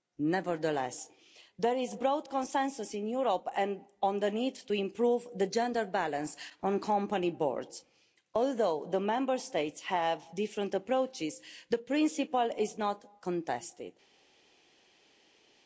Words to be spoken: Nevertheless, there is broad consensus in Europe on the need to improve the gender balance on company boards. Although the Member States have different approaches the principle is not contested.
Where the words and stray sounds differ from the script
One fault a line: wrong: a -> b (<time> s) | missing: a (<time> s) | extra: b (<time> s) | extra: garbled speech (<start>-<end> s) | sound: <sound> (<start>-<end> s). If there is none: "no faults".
no faults